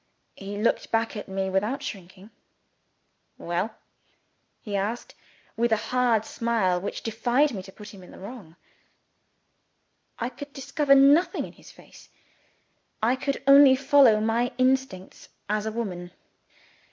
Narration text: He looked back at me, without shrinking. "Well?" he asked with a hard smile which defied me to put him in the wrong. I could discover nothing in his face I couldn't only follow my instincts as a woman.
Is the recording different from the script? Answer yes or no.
yes